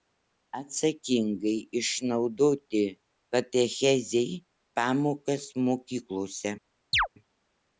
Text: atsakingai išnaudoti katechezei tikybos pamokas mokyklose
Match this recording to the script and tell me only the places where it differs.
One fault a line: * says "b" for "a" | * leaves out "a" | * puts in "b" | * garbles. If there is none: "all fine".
* leaves out "tikybos"